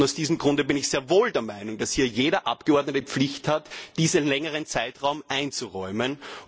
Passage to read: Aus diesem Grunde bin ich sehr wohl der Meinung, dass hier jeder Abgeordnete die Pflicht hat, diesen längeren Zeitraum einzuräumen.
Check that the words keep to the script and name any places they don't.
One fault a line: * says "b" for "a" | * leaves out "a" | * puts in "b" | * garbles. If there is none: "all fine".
all fine